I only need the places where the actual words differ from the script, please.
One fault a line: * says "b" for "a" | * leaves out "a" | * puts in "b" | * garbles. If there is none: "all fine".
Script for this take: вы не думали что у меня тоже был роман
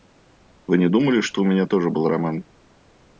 all fine